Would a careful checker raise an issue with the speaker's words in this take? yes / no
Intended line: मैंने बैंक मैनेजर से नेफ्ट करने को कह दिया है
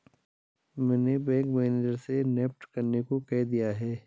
no